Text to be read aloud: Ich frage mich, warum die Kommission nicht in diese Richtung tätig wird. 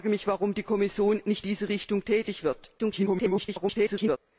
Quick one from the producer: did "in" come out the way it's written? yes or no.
no